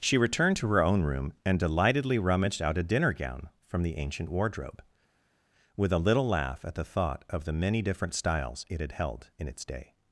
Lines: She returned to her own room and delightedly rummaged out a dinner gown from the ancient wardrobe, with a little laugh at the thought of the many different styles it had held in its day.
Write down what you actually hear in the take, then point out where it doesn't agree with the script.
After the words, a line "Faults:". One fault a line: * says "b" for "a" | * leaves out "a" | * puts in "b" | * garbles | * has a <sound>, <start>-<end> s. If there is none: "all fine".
She returned to her own room and delightedly rummaged out a dinner gown from the ancient wardrobe, with a little laugh at the thought of the many different styles it had held in its day.
Faults:
all fine